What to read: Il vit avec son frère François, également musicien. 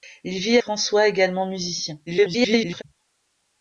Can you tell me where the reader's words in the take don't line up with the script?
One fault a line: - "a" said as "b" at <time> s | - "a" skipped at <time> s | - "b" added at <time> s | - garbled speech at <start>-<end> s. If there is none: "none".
- "avec son frère" skipped at 0.6 s
- garbled speech at 2.1-2.8 s